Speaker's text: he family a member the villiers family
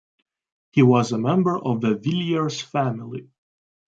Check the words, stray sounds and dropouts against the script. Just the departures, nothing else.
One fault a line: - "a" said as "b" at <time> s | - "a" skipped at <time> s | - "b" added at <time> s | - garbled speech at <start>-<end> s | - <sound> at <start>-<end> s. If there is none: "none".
- "family" said as "was" at 0.8 s
- "of" added at 1.6 s